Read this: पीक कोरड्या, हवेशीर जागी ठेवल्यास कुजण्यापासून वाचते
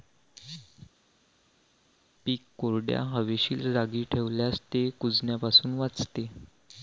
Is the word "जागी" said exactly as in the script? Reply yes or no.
yes